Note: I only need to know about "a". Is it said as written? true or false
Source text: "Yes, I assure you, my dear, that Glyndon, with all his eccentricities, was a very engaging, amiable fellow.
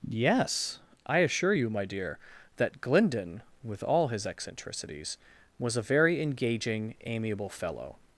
true